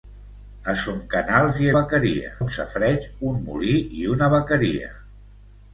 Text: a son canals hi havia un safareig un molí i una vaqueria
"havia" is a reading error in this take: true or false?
true